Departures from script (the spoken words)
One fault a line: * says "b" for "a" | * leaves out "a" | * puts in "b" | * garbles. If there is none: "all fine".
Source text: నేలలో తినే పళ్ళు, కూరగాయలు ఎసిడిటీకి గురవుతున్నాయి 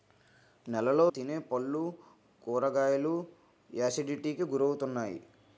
all fine